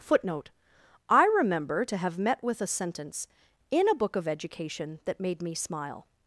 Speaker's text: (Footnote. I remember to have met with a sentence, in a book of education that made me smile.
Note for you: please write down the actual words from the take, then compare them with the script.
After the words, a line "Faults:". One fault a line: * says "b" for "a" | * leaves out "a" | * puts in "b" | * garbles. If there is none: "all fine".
(Footnote. I remember to have met with a sentence, in a book of education that made me smile.
Faults:
all fine